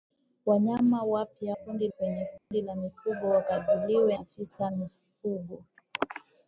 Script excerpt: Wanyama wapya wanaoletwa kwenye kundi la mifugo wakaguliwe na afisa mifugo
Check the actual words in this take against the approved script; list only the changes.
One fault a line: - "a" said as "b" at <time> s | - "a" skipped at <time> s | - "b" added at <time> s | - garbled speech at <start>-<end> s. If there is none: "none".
- "wanaoletwa" said as "kundi" at 1.5 s
- "na" skipped at 4.2 s